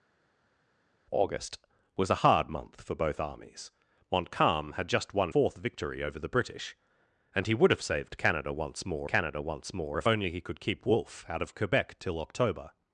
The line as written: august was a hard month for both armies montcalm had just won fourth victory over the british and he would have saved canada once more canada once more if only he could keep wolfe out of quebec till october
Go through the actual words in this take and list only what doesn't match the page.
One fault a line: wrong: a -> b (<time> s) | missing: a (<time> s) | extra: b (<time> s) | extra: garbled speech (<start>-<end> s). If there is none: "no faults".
no faults